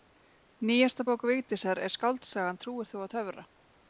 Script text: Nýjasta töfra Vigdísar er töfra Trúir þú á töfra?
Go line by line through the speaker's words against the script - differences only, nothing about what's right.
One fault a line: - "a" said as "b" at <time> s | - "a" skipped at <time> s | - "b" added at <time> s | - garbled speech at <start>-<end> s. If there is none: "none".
- "töfra" said as "bók" at 1.1 s
- "töfra" said as "skáldsagan" at 2.0 s